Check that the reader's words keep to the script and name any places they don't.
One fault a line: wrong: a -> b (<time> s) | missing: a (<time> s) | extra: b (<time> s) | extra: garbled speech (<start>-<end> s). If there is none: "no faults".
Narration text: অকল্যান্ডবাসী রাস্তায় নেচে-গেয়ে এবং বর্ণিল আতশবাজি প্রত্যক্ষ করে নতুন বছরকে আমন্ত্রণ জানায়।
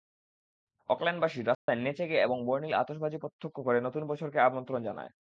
no faults